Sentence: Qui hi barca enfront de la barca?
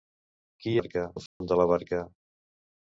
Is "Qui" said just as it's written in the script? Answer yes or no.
yes